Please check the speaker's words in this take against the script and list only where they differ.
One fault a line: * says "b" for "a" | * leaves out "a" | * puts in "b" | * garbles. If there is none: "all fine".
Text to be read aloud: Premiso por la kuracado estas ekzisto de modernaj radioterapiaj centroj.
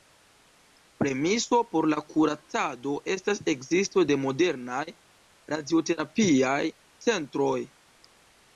all fine